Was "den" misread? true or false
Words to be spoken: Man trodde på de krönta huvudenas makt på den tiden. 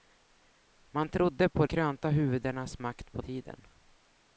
true